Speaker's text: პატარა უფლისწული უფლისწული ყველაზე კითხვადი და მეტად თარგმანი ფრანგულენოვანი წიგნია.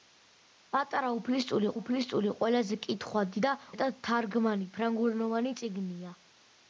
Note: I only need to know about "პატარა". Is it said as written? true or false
true